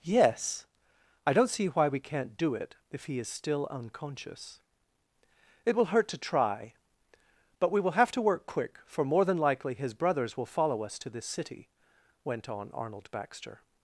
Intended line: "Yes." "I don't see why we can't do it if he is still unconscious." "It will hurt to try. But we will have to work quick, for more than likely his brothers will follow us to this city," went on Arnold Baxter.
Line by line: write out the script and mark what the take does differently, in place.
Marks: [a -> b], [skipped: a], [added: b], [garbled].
"Yes." "I don't see why we can't do it if he is still unconscious." "It will hurt to try. But we will have to work quick, for more than likely his brothers will follow us to this city," went on Arnold Baxter.